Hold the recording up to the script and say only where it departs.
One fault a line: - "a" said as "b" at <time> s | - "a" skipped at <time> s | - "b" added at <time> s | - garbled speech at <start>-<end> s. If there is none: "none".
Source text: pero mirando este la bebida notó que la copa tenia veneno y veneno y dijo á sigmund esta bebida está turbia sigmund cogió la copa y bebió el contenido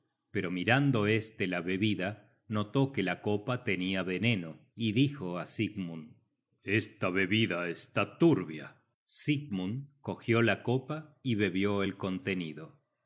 - "veneno y" skipped at 4.9 s